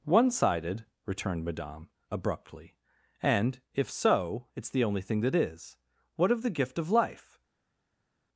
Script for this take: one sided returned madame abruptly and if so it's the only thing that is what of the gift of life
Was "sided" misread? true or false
false